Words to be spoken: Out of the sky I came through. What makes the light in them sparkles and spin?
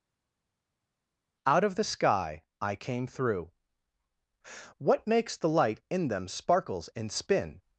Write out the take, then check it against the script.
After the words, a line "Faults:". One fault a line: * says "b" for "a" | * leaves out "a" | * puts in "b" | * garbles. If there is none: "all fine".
Out of the sky I came through. What makes the light in them sparkles and spin?
Faults:
all fine